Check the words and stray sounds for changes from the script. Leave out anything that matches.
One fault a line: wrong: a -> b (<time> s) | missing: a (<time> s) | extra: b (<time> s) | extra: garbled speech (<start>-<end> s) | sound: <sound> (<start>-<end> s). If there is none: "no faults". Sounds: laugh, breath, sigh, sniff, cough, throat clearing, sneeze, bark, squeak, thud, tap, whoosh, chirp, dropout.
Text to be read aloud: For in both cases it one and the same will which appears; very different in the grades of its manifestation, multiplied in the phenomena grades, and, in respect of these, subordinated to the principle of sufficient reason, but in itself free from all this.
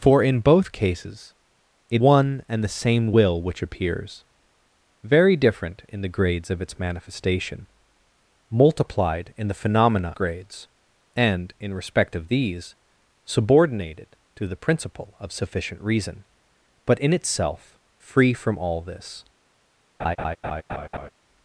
sound: laugh (20.0-21.1 s)